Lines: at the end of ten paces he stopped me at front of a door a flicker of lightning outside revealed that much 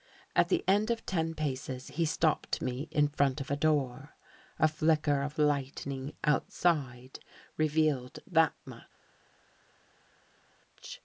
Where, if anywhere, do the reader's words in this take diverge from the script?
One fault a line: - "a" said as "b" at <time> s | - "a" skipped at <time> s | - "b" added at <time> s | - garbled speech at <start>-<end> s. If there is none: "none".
- "at" said as "in" at 2.9 s